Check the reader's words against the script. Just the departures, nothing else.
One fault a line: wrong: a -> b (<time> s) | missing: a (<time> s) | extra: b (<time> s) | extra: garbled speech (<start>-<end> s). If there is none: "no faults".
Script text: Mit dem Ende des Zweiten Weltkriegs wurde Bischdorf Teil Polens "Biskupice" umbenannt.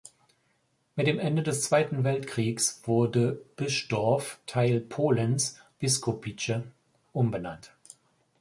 no faults